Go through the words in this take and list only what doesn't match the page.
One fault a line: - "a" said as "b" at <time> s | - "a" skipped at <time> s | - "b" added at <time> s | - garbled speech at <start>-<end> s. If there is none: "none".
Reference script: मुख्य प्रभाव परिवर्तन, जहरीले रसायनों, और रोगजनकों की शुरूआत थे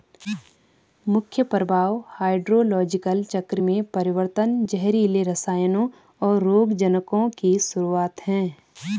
- "हाइड्रोलॉजिकल चक्र में" added at 2.1 s
- "थे" said as "हैं" at 8.3 s